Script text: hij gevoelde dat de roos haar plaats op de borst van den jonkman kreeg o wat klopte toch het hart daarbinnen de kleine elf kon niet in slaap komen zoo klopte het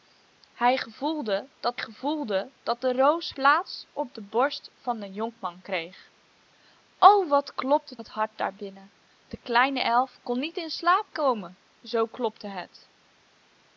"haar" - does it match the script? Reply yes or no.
no